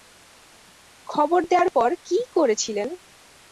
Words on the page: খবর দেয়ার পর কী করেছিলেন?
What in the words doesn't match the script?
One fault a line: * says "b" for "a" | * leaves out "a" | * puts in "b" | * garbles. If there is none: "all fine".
all fine